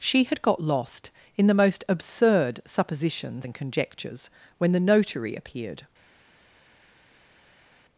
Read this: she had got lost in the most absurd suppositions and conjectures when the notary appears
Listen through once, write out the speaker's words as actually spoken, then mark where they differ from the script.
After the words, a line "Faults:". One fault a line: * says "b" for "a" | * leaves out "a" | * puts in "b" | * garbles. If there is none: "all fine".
she had got lost in the most absurd suppositions and conjectures when the notary appeared
Faults:
* says "appeared" for "appears"